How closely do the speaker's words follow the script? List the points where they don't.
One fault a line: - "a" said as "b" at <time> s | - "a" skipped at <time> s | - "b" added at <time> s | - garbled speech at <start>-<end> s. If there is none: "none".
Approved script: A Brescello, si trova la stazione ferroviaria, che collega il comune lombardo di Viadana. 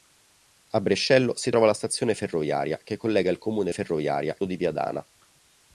- "lombardo" said as "ferroviaria" at 3.7 s